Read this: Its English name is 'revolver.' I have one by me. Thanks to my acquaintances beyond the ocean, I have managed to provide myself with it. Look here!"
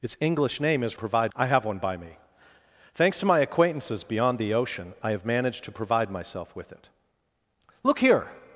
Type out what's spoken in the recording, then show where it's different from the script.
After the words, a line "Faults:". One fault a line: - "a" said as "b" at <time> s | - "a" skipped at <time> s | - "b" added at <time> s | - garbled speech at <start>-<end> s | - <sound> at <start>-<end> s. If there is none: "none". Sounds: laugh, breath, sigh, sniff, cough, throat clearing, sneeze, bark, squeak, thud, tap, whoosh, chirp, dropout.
Its English name is 'provide.' I have one by me. Thanks to my acquaintances beyond the ocean, I have managed to provide myself with it. Look here!"
Faults:
- "revolver" said as "provide" at 0.9 s